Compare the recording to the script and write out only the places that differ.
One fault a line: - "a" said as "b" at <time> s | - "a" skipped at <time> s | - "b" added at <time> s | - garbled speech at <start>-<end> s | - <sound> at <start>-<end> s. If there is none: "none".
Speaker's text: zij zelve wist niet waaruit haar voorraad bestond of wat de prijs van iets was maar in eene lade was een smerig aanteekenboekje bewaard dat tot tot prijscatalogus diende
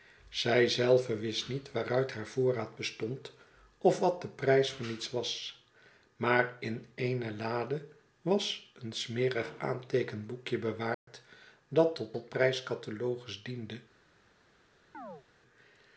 - dropout at 10.9-11.1 s
- chirp at 14.9-15.2 s